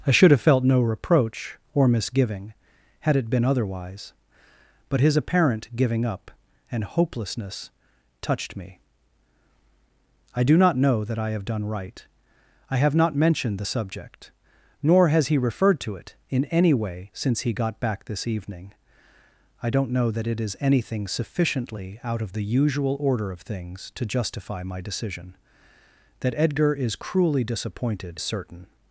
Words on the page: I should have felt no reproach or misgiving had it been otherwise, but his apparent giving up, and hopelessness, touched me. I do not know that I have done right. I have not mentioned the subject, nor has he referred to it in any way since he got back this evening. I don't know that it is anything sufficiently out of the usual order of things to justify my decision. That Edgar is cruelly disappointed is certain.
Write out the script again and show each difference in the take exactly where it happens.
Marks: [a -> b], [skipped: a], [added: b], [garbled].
I should have felt no reproach or misgiving had it been otherwise, but his apparent giving up, and hopelessness, touched me. I do not know that I have done right. I have not mentioned the subject, nor has he referred to it in any way since he got back this evening. I don't know that it is anything sufficiently out of the usual order of things to justify my decision. That Edgar is cruelly disappointed [skipped: is] certain.